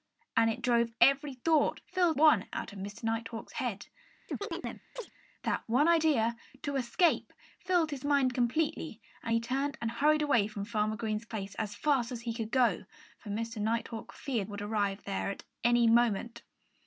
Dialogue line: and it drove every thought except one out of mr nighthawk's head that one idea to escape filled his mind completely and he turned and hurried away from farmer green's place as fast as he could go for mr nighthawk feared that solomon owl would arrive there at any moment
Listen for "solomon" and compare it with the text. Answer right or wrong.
wrong